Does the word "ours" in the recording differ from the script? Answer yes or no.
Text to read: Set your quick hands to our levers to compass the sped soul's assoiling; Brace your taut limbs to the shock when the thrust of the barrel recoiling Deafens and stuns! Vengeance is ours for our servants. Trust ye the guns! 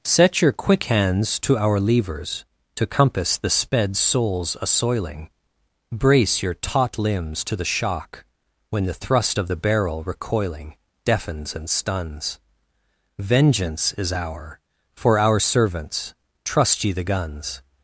yes